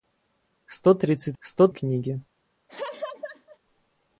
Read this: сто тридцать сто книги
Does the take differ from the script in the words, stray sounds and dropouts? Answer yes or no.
yes